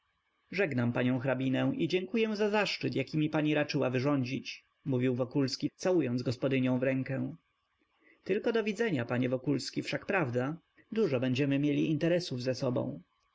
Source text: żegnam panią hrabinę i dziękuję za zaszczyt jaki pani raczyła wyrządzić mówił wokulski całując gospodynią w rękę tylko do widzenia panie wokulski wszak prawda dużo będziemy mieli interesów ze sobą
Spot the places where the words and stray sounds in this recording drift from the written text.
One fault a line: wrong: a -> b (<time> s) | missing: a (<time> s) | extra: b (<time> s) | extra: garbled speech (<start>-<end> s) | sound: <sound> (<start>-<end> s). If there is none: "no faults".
extra: mi (3.2 s)